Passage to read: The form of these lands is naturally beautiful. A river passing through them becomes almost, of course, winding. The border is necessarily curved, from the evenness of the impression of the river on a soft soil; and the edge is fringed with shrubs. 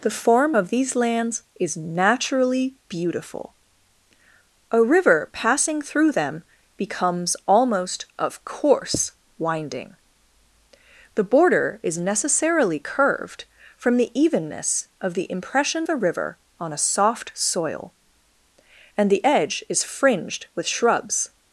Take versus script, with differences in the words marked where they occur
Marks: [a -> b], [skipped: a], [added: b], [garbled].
The form of these lands is naturally beautiful. A river passing through them becomes almost, of course, winding. The border is necessarily curved, from the evenness of the impression [skipped: of] the river on a soft soil; and the edge is fringed with shrubs.